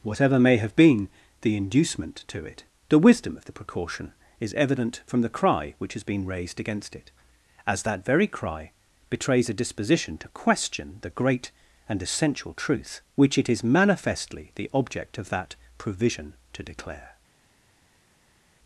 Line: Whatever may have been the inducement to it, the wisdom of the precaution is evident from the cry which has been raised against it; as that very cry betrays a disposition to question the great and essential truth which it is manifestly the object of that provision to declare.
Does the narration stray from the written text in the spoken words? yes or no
no